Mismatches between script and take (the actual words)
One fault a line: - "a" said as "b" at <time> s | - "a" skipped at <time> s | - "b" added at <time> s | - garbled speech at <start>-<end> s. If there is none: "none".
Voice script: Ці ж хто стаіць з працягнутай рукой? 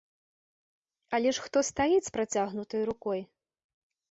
- "Ці" said as "Але" at 1.2 s